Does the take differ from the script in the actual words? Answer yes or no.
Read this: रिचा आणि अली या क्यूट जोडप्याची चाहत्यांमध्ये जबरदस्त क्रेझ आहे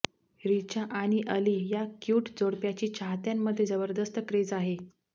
no